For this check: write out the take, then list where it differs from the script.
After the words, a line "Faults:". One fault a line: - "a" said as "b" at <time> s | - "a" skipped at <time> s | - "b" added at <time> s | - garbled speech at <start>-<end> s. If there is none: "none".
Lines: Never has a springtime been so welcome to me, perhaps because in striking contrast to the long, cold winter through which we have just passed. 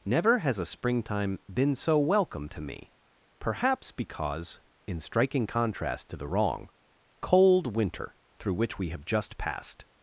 Never has a springtime been so welcome to me, perhaps because in striking contrast to the wrong, cold winter through which we have just passed.
Faults:
- "long" said as "wrong" at 6.2 s